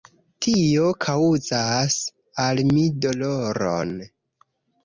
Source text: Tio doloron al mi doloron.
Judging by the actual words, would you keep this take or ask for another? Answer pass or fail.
fail